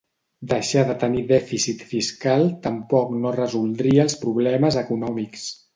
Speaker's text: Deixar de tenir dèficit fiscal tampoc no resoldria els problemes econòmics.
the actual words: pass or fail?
pass